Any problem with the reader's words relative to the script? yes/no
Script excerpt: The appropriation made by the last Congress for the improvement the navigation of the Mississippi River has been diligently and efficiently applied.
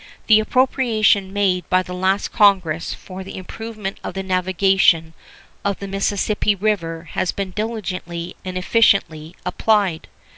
yes